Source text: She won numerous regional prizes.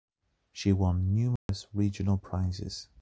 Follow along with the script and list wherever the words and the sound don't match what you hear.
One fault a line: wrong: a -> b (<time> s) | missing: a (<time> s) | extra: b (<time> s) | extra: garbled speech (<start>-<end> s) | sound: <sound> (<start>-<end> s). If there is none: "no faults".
sound: dropout (1.4-1.5 s)